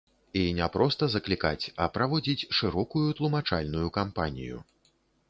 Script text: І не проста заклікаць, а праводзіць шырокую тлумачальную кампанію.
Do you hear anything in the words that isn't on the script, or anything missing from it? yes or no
no